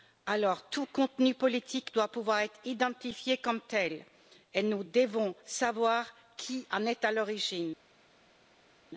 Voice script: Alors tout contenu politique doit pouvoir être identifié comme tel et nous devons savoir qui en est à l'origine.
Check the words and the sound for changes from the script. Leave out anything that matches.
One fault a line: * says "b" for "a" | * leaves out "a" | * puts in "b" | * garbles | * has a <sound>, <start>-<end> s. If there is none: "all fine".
all fine